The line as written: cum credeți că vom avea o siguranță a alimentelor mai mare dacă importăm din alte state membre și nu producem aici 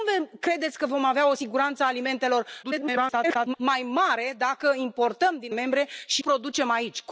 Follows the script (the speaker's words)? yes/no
no